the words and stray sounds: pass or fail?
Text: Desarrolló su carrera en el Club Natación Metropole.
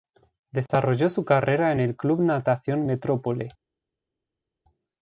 pass